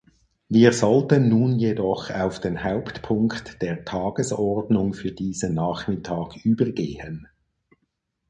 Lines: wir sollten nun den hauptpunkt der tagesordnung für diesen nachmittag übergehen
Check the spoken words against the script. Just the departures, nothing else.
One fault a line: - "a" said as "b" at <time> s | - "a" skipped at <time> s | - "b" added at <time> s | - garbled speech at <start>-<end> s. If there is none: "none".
- "jedoch auf" added at 1.6 s